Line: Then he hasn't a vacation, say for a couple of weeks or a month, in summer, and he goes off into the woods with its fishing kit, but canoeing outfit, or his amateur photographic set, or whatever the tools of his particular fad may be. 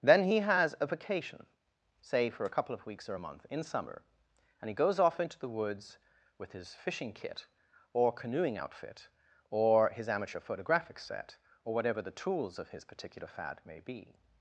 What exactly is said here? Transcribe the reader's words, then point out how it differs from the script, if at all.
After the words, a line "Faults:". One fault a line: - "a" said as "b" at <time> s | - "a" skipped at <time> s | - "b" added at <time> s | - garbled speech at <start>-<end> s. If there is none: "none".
Then he has a vacation, say for a couple of weeks or a month, in summer, and he goes off into the woods with his fishing kit, or canoeing outfit, or his amateur photographic set, or whatever the tools of his particular fad may be.
Faults:
- "hasn't" said as "has" at 0.4 s
- "its" said as "his" at 6.5 s
- "but" said as "or" at 7.9 s